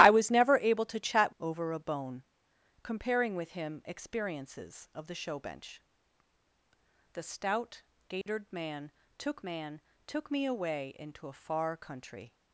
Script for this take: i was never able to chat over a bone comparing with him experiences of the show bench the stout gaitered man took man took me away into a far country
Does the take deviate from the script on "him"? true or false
false